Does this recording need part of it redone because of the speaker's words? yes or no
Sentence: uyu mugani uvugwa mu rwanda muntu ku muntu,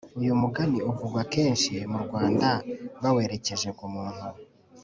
yes